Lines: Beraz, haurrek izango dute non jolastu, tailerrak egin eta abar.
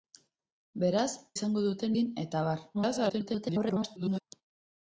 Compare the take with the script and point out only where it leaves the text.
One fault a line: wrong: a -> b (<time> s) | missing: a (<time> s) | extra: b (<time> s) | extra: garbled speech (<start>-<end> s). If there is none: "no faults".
missing: haurrek (1.1 s)
missing: non jolastu tailerrak (1.9 s)
extra: garbled speech (2.7-4.2 s)